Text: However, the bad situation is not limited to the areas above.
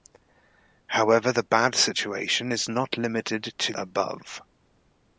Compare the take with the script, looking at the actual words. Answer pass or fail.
fail